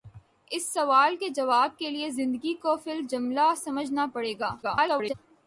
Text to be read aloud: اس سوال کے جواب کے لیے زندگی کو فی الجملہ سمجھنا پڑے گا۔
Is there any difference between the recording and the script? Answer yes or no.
yes